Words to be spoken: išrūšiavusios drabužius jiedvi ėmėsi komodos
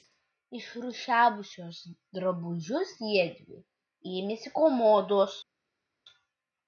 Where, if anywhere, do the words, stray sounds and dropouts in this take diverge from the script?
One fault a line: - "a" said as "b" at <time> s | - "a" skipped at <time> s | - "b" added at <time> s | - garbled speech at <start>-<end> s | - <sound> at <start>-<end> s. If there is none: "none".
none